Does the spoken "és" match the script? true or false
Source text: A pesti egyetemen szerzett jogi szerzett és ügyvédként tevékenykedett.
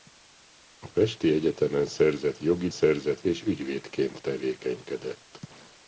true